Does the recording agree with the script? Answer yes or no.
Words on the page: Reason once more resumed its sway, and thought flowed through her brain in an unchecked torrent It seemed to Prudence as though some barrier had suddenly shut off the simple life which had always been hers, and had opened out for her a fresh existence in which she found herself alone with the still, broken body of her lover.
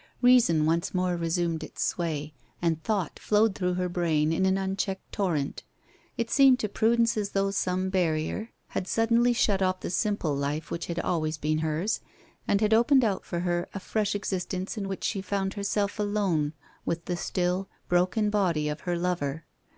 yes